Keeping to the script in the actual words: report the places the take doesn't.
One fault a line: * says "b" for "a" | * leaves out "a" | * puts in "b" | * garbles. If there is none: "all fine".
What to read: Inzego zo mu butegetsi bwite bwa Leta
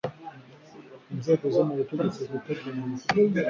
all fine